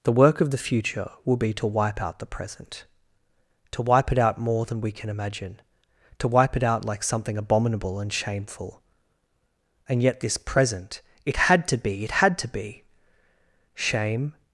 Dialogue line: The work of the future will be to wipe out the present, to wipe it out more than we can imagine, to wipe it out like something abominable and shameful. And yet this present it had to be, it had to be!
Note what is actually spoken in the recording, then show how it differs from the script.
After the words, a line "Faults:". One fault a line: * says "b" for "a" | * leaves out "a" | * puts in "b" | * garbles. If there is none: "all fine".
The work of the future will be to wipe out the present, to wipe it out more than we can imagine, to wipe it out like something abominable and shameful. And yet this present it had to be, it had to be! Shame
Faults:
* puts in "Shame"